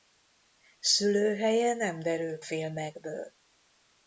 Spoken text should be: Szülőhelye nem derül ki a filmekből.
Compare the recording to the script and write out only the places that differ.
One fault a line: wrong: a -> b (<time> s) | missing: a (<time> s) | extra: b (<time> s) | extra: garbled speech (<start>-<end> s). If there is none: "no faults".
missing: ki a (2.4 s)